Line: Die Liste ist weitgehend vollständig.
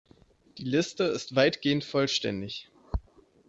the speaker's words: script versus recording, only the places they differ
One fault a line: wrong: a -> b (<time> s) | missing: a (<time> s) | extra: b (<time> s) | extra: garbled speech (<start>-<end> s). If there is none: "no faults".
no faults